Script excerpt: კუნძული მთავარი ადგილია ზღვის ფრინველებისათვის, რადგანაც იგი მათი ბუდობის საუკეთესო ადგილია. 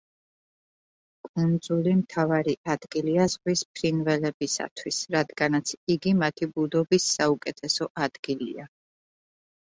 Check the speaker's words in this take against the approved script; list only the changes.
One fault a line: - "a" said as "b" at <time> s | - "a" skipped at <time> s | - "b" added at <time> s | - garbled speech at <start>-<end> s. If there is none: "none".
none